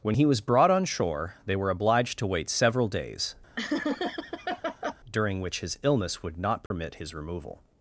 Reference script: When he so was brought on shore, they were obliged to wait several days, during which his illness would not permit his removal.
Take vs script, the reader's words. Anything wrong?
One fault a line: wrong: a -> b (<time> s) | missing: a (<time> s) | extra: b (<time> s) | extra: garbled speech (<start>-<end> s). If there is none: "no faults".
missing: so (0.2 s)